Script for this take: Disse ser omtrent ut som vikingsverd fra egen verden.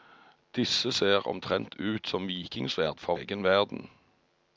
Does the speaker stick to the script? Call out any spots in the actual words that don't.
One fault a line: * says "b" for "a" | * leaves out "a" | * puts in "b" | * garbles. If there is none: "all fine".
all fine